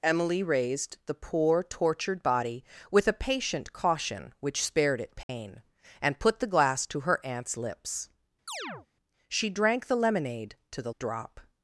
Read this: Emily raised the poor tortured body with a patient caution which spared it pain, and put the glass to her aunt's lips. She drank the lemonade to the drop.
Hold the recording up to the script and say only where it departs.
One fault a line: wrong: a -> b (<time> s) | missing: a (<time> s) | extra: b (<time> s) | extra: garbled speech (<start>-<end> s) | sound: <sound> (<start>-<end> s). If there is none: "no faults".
sound: dropout (5.2-5.3 s)
sound: chirp (8.5-8.9 s)